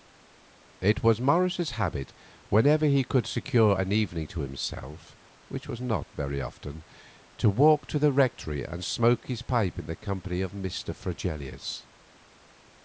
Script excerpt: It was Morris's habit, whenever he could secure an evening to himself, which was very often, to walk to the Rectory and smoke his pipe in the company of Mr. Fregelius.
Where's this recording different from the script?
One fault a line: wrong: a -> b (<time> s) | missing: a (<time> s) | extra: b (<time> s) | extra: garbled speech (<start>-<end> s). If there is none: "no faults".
extra: not (5.8 s)